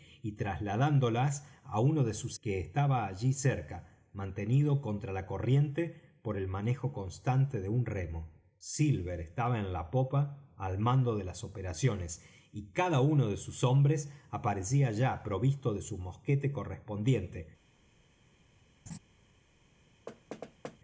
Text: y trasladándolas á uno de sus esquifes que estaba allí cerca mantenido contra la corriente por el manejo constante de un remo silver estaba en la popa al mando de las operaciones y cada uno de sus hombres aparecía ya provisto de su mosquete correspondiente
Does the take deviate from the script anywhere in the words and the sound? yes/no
yes